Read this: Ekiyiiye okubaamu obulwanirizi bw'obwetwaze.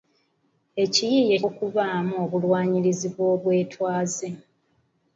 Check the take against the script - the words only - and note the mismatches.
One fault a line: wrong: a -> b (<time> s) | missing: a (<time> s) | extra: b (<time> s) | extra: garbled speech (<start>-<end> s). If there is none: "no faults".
no faults